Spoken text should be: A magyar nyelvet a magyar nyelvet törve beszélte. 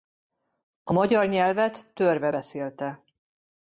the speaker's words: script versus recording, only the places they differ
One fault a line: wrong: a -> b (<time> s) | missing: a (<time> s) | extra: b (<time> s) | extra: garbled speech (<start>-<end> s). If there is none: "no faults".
missing: a magyar nyelvet (1.9 s)